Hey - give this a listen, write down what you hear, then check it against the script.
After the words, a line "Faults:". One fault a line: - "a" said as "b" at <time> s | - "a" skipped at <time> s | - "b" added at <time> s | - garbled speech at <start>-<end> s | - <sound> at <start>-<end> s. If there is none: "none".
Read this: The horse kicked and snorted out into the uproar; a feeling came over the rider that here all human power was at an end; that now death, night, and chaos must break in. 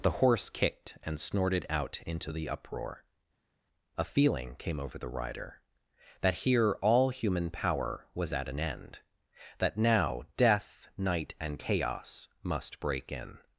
The horse kicked and snorted out into the uproar; a feeling came over the rider that here all human power was at an end; that now death, night, and chaos must break in.
Faults:
none